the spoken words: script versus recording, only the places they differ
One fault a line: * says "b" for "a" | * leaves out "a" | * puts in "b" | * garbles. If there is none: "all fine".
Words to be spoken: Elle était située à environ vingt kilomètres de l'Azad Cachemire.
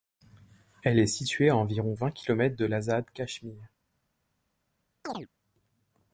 * says "est" for "était"